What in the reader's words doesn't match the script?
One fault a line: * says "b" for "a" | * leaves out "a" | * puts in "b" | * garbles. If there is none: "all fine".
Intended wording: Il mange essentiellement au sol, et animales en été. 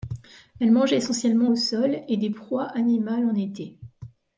* says "Elle" for "Il"
* puts in "des proies"